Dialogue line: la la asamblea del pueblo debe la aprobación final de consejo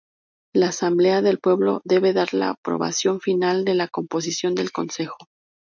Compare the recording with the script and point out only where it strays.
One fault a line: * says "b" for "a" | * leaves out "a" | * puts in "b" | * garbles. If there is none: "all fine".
* leaves out "la"
* puts in "dar"
* puts in "la composición del"